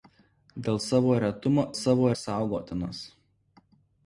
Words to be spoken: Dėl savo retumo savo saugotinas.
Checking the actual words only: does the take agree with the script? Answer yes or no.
yes